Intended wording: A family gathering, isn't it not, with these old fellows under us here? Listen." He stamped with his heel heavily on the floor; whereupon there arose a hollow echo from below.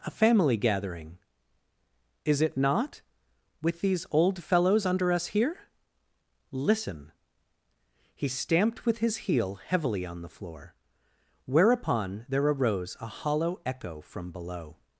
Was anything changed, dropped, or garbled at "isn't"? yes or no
yes